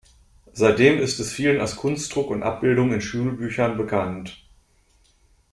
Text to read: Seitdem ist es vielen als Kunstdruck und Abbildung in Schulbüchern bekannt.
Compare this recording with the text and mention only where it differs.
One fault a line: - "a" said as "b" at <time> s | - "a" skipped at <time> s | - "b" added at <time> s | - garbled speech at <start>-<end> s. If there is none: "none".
none